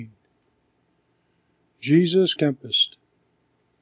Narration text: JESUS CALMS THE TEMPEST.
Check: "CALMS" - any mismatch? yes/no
yes